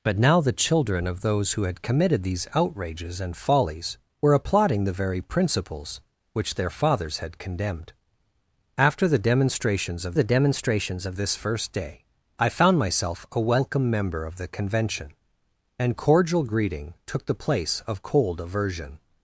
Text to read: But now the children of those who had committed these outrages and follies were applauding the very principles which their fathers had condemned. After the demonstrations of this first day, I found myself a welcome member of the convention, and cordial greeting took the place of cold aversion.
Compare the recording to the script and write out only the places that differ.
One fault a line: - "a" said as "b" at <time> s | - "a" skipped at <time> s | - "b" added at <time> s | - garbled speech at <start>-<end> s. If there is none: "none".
- "the demonstrations of" added at 10.1 s